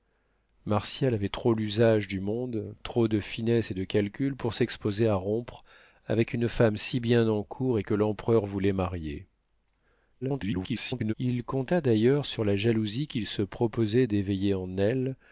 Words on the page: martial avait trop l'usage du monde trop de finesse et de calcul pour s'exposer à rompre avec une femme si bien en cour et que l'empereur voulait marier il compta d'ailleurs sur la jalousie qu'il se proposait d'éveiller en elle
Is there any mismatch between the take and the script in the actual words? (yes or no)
yes